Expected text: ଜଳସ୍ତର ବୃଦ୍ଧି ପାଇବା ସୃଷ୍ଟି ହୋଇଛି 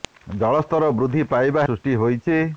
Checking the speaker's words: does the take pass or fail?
pass